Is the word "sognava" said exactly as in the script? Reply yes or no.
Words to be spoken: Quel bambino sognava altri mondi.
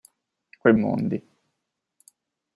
no